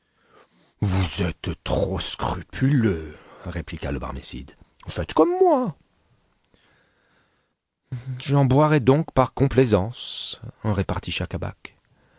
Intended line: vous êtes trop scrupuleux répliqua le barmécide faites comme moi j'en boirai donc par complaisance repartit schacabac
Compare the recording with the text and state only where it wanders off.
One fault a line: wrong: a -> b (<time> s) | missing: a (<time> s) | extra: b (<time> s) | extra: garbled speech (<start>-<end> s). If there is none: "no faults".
no faults